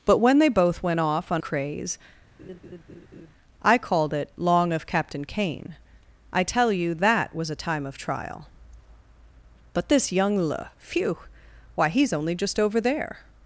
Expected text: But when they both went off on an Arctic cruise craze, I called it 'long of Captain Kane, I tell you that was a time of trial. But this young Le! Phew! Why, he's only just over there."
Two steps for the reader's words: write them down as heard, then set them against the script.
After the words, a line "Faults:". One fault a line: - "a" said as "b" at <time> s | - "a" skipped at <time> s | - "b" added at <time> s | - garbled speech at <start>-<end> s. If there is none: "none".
But when they both went off on craze, I called it 'long of Captain Kane, I tell you that was a time of trial. But this young Le! Phew! Why, he's only just over there."
Faults:
- "an Arctic cruise" skipped at 1.4 s